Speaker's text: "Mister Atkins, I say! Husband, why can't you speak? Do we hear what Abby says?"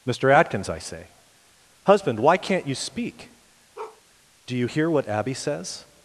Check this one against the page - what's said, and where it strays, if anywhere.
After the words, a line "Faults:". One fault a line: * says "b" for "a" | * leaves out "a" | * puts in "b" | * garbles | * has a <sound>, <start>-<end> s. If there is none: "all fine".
"Mister Atkins, I say! Husband, why can't you speak? Do you hear what Abby says?"
Faults:
* has a bark, 3.7-4.0 s
* says "you" for "we"